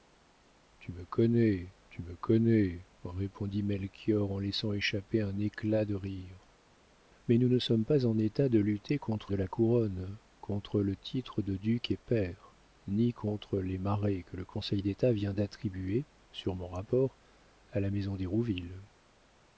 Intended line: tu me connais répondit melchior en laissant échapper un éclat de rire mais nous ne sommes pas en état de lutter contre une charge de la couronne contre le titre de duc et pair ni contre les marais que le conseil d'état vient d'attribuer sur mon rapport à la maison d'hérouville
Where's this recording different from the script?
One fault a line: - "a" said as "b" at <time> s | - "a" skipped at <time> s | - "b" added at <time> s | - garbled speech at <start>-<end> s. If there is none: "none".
- "tu me connais" added at 1.9 s
- "une charge" skipped at 9.3 s